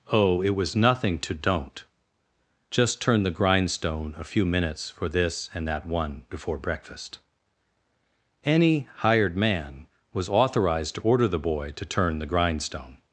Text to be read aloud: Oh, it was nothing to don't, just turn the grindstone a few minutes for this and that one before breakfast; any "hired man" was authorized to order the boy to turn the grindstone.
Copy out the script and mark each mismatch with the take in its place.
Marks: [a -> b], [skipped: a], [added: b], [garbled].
Oh, it was nothing to don't, just turn the grindstone a few minutes for this and that one before breakfast; any "hired man" was authorized to order the boy to turn the grindstone.